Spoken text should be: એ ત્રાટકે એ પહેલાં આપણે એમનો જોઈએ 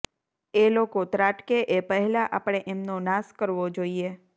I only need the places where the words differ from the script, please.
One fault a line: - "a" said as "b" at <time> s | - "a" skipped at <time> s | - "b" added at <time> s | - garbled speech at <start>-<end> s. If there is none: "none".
- "લોકો" added at 0.7 s
- "નાશ કરવો" added at 3.0 s